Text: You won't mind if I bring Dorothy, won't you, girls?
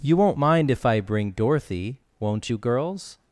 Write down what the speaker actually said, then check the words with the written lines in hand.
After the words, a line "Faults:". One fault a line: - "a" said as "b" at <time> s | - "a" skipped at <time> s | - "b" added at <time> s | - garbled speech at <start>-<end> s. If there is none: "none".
You won't mind if I bring Dorothy, won't you, girls?
Faults:
none